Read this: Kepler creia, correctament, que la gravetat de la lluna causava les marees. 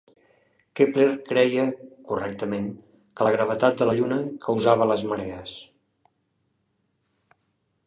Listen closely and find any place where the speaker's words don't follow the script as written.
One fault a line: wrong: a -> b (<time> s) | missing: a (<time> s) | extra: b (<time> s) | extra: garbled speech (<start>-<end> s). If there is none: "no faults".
no faults